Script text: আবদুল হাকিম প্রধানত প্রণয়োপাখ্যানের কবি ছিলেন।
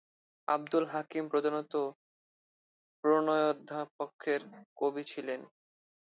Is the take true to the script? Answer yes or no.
yes